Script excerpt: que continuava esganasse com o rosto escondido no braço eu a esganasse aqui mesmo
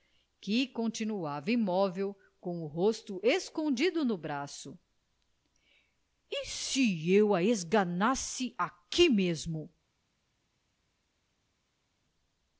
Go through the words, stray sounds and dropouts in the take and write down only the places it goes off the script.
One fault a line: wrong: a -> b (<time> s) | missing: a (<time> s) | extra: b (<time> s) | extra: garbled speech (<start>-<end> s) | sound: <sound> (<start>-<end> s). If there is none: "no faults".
wrong: esganasse -> imóvel (1.5 s)
extra: e se (6.3 s)